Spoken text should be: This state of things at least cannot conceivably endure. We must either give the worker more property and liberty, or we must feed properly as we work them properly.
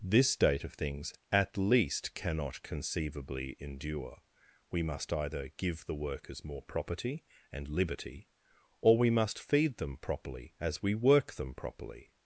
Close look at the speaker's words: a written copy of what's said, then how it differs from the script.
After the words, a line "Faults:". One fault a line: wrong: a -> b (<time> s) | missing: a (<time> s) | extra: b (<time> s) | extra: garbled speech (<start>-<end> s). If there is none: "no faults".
This state of things at least cannot conceivably endure. We must either give the workers more property and liberty, or we must feed them properly as we work them properly.
Faults:
wrong: worker -> workers (5.9 s)
extra: them (9.8 s)